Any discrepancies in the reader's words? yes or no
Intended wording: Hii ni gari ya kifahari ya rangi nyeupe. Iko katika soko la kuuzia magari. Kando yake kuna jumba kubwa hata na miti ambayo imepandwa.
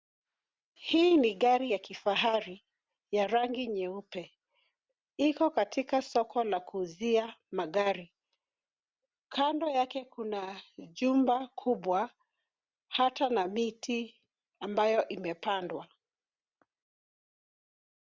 no